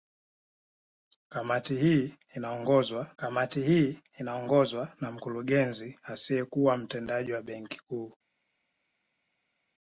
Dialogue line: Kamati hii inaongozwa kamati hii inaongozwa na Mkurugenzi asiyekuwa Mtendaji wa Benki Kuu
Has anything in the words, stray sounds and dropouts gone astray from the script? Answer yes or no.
no